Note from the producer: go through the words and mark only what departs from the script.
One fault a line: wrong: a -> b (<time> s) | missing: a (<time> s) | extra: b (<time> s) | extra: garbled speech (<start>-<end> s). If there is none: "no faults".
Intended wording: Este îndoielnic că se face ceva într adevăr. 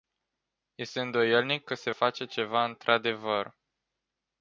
no faults